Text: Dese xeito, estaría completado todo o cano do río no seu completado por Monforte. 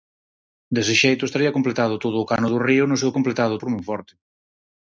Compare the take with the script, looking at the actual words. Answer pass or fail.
pass